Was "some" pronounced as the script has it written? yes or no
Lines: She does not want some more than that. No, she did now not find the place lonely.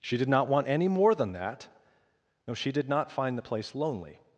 no